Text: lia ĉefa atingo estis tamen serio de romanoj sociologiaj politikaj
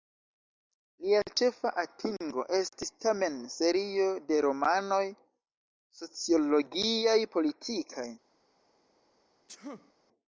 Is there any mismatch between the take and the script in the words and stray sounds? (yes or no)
yes